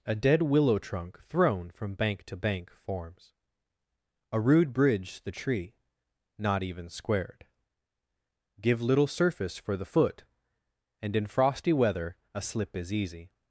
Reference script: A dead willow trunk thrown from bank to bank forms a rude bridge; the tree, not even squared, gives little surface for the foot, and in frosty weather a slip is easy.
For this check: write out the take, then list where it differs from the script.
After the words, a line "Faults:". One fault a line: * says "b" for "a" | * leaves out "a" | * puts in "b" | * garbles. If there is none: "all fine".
A dead willow trunk thrown from bank to bank forms a rude bridge; the tree, not even squared, give little surface for the foot, and in frosty weather a slip is easy.
Faults:
* says "give" for "gives"